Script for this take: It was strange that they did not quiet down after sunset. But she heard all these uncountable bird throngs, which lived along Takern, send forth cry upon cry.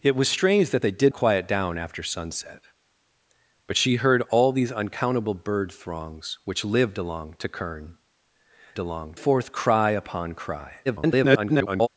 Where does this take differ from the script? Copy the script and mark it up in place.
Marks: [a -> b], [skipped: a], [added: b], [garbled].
It was strange that they did [skipped: not] quiet down after sunset. But she heard all these uncountable bird throngs, which lived along Takern, [send -> along] forth cry upon cry. [garbled]